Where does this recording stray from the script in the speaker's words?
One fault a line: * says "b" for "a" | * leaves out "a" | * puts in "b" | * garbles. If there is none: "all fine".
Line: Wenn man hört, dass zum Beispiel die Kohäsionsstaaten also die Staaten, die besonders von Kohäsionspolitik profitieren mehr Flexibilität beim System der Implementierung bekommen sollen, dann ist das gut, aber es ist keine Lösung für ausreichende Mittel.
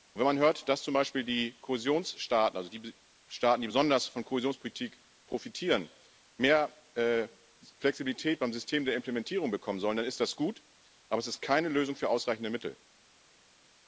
all fine